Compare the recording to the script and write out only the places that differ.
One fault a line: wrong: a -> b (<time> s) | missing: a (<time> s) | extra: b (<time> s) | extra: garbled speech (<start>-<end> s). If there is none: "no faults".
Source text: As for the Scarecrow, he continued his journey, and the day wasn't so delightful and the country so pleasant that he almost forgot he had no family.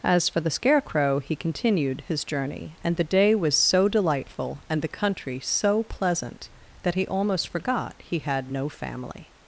wrong: wasn't -> was (3.4 s)